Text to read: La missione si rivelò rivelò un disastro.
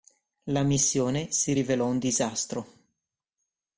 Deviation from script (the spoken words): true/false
true